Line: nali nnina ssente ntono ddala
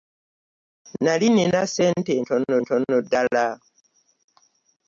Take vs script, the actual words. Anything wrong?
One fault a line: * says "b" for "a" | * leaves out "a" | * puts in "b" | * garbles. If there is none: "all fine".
* puts in "ntono"